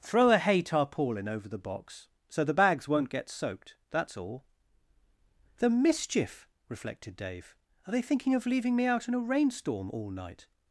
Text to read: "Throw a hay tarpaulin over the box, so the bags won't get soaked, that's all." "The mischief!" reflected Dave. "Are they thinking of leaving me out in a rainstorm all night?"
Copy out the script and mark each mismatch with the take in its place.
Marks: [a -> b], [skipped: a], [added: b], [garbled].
"Throw a hay tarpaulin over the box, so the bags won't get soaked, that's all." "The mischief!" reflected Dave. "Are they thinking of leaving me out in a rainstorm all night?"